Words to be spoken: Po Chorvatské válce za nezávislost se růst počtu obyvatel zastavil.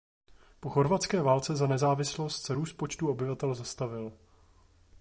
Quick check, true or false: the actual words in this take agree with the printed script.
true